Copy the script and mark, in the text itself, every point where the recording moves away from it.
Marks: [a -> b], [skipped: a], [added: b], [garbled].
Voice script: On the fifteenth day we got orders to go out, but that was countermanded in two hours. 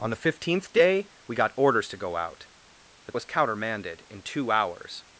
On the fifteenth day we got orders to go out, but [skipped: that] was countermanded in two hours.